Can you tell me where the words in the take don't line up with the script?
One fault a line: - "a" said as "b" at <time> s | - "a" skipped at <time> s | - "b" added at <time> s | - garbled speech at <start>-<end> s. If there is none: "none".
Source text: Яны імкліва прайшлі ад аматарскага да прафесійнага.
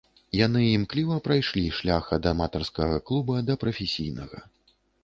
- "шлях" added at 1.8 s
- "клуба" added at 3.1 s